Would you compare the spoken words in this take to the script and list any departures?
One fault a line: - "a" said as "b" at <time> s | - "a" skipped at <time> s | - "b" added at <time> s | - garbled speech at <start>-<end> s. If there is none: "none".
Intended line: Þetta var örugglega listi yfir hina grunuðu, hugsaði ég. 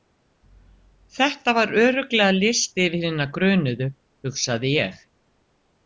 none